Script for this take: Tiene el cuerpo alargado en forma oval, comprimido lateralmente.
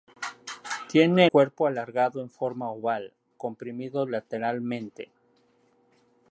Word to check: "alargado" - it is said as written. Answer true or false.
true